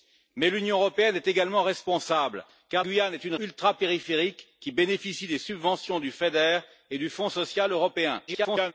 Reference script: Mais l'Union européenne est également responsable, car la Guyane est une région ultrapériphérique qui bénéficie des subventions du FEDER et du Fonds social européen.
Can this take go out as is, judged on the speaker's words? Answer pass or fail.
fail